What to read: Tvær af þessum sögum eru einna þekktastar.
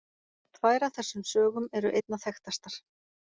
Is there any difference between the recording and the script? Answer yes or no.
no